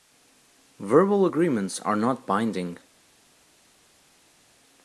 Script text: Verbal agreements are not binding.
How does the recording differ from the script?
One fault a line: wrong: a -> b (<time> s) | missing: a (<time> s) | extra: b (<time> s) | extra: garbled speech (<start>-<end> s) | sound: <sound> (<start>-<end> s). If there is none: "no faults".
no faults